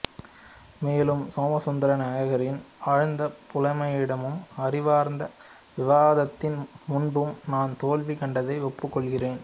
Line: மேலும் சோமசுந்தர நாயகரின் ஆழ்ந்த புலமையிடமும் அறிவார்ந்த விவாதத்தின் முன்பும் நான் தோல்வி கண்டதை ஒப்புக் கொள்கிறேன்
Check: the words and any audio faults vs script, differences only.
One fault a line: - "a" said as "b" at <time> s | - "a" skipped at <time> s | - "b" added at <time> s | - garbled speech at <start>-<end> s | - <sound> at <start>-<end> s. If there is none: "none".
none